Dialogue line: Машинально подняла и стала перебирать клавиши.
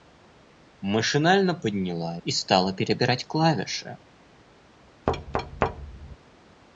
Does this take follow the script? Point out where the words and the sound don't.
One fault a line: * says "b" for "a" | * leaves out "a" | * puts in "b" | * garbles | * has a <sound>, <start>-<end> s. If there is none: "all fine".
* has a thud, 5.1-6.2 s